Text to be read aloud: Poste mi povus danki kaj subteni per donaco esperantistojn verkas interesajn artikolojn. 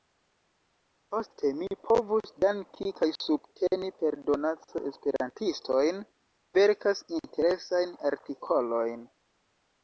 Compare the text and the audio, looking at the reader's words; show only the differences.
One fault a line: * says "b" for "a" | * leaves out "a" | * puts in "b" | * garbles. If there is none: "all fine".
all fine